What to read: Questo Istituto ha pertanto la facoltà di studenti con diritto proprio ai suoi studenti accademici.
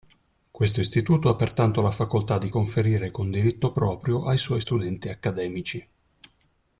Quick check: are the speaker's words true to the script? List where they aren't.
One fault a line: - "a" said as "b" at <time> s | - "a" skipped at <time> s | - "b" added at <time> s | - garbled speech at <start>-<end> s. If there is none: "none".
- "studenti" said as "conferire" at 2.5 s